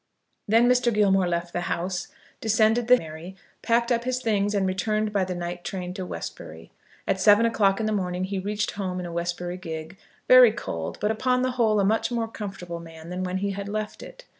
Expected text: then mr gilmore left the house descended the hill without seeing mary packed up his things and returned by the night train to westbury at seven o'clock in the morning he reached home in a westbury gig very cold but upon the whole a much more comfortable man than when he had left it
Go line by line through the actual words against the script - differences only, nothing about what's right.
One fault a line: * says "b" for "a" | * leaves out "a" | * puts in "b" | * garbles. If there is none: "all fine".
* leaves out "hill without seeing"